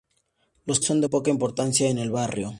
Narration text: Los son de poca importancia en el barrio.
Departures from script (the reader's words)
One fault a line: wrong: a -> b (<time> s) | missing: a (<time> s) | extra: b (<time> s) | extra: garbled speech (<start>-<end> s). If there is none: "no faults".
no faults